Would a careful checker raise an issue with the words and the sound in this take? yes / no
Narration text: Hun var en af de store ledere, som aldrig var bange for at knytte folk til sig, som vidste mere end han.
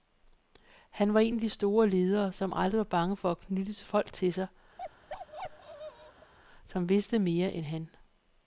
yes